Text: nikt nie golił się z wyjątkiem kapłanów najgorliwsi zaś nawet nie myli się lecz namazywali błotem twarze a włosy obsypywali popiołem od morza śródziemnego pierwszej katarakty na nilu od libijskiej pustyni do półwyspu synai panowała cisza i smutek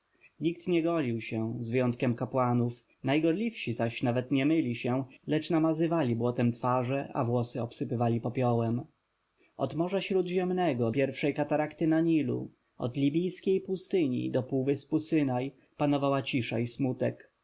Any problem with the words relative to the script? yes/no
no